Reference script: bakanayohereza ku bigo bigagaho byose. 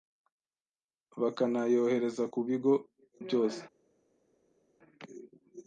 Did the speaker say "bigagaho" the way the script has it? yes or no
no